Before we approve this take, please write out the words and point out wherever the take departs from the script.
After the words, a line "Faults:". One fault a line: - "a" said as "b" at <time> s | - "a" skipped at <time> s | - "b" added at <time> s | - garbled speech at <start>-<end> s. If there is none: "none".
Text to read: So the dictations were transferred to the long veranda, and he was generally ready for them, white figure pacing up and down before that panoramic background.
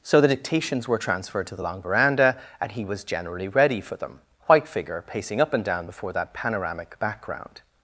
So the dictations were transferred to the long veranda, and he was generally ready for them, white figure pacing up and down before that panoramic background.
Faults:
none